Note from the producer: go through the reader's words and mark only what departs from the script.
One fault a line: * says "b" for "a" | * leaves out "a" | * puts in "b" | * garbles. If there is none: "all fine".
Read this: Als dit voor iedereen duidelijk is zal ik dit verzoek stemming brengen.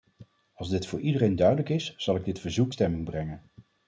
all fine